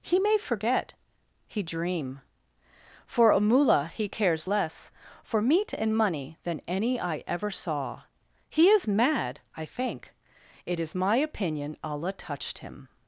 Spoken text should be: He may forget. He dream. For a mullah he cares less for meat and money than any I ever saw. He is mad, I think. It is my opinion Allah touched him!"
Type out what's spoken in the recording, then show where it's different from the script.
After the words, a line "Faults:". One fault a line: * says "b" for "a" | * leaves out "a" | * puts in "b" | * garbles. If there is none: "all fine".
He may forget. He dream. For a mullah he cares less for meat and money than any I ever saw. He is mad, I think. It is my opinion Allah touched him!"
Faults:
all fine